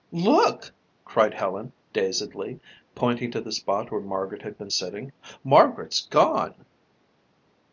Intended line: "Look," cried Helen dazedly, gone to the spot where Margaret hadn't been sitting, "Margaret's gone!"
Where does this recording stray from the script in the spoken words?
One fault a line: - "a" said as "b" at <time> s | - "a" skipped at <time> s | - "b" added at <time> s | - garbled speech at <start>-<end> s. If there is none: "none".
- "gone" said as "pointing" at 2.9 s
- "hadn't" said as "had" at 4.4 s